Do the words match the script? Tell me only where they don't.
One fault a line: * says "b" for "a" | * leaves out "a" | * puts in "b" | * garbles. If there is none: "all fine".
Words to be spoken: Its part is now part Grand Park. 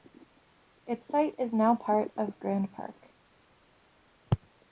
* says "site" for "part"
* puts in "of"